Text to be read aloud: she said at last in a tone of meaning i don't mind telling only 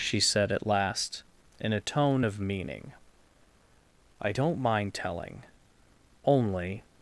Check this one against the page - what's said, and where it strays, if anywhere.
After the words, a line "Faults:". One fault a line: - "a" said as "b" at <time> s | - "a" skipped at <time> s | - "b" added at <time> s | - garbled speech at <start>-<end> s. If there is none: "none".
she said at last in a tone of meaning i don't mind telling only
Faults:
none